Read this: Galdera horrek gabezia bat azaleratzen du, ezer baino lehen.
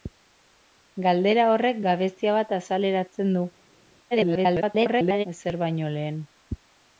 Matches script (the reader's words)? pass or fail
fail